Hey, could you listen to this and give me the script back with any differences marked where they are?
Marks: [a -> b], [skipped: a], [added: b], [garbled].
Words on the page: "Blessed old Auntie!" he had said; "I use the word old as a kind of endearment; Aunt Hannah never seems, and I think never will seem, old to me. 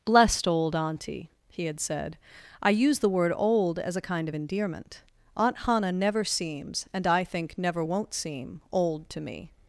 "Blessed old Auntie!" he had said; "I use the word old as a kind of endearment; Aunt Hannah never seems, and I think never [will -> won't] seem, old to me.